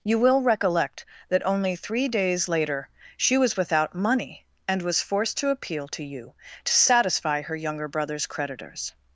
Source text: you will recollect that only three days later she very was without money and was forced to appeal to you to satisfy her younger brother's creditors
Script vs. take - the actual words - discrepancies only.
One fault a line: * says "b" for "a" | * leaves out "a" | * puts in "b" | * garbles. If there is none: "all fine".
* leaves out "very"